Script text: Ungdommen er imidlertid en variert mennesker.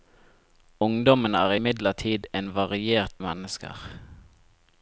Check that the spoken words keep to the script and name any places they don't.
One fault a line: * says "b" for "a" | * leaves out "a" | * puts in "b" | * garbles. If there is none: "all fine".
all fine